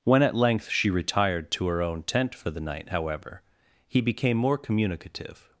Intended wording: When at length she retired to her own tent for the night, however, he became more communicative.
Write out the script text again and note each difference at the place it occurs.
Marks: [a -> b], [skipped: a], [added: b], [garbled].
When at length she retired to her own tent for the night, however, he became more communicative.